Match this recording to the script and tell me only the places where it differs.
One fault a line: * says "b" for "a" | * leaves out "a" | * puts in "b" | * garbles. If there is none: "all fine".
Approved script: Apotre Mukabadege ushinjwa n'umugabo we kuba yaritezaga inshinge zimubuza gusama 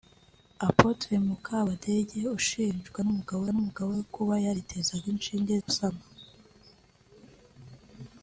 * puts in "n'umugabo"
* leaves out "zimubuza"